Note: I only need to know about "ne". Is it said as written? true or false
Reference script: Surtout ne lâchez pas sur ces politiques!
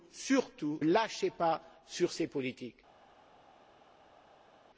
false